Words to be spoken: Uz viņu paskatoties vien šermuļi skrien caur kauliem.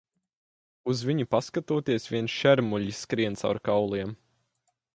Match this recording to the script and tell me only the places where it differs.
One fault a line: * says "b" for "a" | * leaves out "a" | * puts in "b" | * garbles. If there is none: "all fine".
all fine